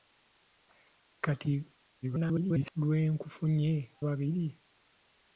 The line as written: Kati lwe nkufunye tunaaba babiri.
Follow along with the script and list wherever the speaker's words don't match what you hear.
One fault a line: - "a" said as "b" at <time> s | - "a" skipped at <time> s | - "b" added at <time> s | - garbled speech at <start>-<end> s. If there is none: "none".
- garbled speech at 2.0-2.7 s
- "tunaaba" skipped at 3.7 s